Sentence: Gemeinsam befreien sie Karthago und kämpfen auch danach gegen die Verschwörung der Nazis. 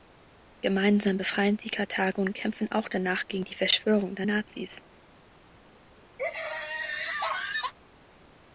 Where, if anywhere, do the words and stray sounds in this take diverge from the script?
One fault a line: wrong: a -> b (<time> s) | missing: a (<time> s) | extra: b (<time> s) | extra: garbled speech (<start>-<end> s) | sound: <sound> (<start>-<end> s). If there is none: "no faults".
sound: laugh (6.2-7.7 s)